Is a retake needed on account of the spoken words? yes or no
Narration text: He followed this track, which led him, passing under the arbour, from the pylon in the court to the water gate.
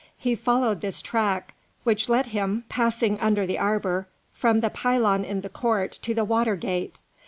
no